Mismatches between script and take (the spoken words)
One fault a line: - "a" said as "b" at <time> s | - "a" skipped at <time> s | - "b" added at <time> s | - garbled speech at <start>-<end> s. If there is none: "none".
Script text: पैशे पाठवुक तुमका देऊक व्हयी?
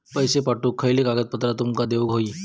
- "खयली कागदपत्रा" added at 0.8 s